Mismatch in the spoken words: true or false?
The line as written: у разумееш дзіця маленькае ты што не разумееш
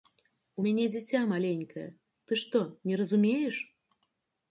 true